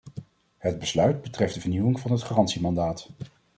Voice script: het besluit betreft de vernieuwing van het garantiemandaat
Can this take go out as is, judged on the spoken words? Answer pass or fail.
pass